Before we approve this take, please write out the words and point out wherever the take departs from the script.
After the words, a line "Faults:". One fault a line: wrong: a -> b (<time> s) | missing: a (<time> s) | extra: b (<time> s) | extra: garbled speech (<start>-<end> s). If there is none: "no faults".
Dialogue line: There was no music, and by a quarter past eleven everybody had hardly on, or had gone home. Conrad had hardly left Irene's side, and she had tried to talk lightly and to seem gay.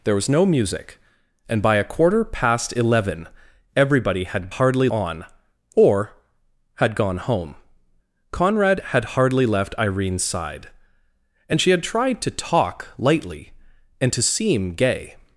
There was no music, and by a quarter past eleven everybody had hardly on, or had gone home. Conrad had hardly left Irene's side, and she had tried to talk lightly and to seem gay.
Faults:
no faults